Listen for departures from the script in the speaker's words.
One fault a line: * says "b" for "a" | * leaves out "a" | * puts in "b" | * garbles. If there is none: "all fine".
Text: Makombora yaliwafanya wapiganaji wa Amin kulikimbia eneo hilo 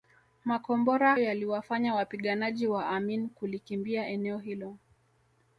all fine